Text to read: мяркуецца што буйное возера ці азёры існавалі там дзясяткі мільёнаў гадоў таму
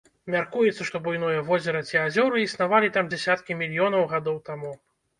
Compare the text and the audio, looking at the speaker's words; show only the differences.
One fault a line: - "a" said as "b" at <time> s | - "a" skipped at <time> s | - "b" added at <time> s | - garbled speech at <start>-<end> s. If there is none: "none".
none